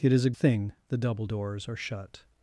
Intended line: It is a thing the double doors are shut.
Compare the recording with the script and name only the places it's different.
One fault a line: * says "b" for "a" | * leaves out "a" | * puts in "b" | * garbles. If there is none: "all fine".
all fine